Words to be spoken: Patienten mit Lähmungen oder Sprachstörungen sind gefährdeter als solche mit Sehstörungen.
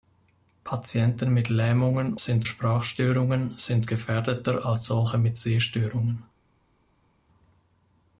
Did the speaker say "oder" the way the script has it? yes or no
no